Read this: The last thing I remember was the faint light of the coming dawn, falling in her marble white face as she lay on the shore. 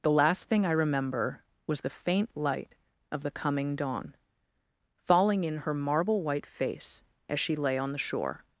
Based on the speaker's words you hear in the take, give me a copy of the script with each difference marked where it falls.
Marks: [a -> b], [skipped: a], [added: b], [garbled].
The last thing I remember was the faint light of the coming dawn, falling in her marble white face as she lay on the shore.